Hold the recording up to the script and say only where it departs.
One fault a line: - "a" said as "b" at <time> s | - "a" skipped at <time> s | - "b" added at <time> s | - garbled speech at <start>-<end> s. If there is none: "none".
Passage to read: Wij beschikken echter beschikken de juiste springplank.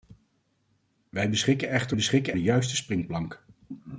none